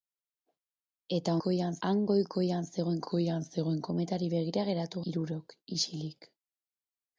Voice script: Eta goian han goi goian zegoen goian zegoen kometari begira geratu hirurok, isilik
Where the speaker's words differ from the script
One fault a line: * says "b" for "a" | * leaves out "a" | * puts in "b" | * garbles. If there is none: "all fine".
all fine